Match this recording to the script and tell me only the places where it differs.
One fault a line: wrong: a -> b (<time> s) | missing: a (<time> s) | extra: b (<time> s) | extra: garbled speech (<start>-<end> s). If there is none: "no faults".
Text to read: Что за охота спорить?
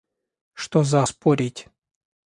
missing: охота (1.0 s)